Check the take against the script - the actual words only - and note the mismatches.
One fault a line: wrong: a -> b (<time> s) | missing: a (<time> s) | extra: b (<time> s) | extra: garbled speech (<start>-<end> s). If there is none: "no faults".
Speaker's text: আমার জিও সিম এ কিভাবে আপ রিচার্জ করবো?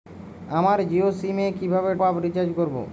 no faults